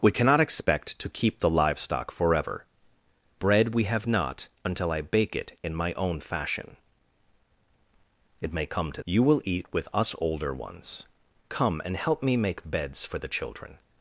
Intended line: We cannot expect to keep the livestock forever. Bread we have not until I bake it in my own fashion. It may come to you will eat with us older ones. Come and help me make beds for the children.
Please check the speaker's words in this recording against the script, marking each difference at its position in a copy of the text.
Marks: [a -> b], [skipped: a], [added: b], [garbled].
We cannot expect to keep the livestock forever. Bread we have not until I bake it in my own fashion. It may come to you will eat with us older ones. Come and help me make beds for the children.